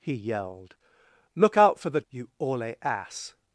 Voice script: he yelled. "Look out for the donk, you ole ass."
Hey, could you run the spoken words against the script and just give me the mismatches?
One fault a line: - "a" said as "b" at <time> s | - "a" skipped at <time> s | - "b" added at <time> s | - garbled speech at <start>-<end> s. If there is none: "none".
- "donk" skipped at 2.0 s